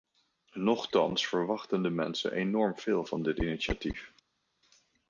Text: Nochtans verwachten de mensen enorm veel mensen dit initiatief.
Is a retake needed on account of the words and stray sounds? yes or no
yes